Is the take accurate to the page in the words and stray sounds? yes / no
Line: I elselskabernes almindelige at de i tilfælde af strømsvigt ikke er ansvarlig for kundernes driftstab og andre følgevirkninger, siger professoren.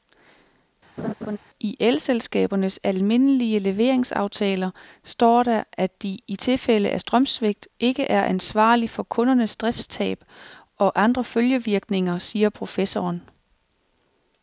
no